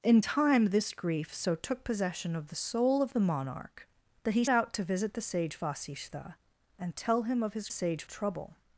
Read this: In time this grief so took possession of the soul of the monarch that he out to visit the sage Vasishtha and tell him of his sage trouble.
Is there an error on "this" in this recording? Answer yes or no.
no